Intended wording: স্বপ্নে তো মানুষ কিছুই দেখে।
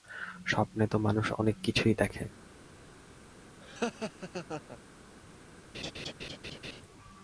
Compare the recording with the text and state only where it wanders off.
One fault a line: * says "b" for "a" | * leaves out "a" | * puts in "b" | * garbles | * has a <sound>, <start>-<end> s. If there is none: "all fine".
* puts in "অনেক"
* has a laugh, 3.6-4.8 s
* has a laugh, 5.7-6.8 s